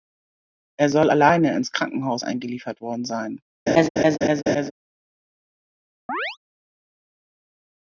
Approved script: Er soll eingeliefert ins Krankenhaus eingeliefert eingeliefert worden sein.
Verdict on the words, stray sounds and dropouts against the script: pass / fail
fail